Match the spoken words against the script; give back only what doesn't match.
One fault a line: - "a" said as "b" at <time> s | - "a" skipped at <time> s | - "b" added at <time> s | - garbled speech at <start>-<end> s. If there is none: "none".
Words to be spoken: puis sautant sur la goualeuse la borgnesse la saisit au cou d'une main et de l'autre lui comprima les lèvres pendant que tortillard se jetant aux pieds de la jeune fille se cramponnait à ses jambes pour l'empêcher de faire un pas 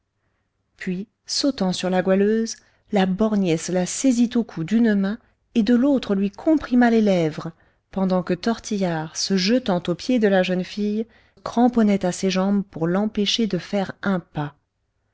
- "se" skipped at 11.1 s